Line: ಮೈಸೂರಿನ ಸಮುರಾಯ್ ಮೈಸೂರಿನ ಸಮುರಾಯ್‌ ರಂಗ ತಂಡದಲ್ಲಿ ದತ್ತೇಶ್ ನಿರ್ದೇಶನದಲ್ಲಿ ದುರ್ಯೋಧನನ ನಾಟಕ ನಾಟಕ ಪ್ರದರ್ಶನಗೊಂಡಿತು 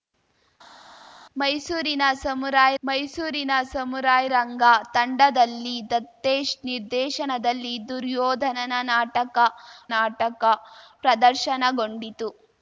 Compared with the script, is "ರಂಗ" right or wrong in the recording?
right